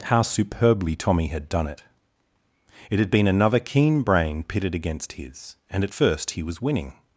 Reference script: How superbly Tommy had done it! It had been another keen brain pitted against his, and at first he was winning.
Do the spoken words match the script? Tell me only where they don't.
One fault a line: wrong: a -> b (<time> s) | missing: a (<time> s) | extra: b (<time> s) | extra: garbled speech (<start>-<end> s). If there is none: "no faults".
no faults